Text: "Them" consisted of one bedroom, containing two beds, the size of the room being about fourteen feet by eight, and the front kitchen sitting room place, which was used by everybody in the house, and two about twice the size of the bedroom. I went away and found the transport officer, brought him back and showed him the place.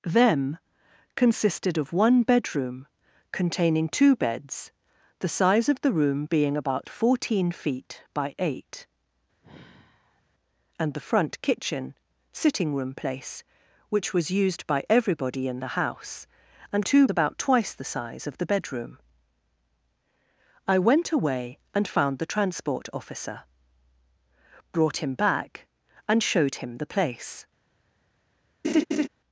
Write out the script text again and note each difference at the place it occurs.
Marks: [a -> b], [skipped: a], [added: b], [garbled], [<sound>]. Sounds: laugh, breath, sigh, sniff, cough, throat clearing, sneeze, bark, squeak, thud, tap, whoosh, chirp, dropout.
"Them" consisted of one bedroom, containing two beds, the size of the room being about fourteen feet by eight, [sigh] and the front kitchen sitting room place, which was used by everybody in the house, and two about twice the size of the bedroom. I went away and found the transport officer, brought him back and showed him the place. [laugh]